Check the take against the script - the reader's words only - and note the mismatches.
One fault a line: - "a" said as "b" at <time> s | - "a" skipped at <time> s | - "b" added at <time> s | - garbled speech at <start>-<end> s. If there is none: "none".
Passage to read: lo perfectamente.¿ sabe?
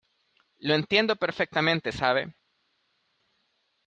- "entiendo" added at 0.7 s